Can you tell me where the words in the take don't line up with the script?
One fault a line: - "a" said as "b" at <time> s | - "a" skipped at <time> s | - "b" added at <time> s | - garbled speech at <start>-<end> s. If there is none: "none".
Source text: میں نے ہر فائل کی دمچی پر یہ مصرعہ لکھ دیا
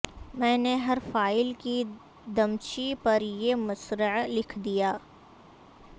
none